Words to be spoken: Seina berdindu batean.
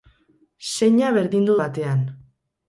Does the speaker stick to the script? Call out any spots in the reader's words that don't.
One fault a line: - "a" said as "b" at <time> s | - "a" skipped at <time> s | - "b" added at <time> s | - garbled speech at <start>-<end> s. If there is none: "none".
none